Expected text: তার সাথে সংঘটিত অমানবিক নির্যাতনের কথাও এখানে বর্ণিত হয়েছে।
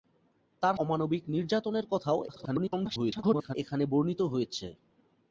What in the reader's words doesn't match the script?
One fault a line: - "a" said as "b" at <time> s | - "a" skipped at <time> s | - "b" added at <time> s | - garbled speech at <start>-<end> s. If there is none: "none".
- "সাথে সংঘটিত" skipped at 0.8 s
- garbled speech at 2.3-3.6 s